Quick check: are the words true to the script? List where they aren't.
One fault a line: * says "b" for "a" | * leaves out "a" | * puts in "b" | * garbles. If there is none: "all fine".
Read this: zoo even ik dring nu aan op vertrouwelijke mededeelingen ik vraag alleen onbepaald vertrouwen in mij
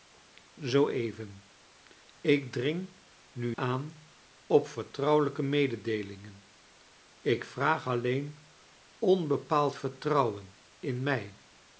all fine